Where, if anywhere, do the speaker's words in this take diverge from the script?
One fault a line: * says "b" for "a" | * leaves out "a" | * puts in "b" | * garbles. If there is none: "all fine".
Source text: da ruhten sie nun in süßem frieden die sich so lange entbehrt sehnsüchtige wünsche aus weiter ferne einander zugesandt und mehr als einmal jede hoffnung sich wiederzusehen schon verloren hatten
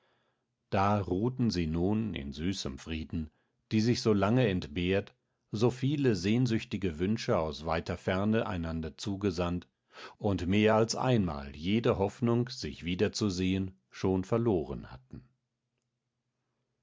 * puts in "so viele"